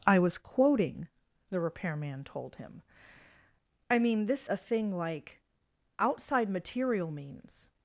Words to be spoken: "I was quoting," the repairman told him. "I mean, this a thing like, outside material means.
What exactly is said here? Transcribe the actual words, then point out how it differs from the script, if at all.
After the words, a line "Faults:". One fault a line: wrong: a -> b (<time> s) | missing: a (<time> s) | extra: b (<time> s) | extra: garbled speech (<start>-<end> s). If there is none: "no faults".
"I was quoting," the repairman told him. "I mean, this a thing like, outside material means.
Faults:
no faults